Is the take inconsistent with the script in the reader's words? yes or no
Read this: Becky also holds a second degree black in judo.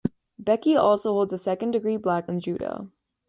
no